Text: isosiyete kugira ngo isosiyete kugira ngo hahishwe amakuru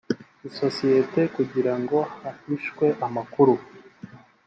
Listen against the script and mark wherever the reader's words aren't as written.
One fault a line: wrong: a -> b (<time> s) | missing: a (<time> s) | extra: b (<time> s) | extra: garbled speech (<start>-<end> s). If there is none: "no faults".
missing: isosiyete kugira ngo (2.0 s)